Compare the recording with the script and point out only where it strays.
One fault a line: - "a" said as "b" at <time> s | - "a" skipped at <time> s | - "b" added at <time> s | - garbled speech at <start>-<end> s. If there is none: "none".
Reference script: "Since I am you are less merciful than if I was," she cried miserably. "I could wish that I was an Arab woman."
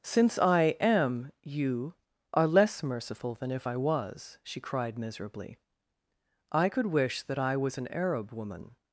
none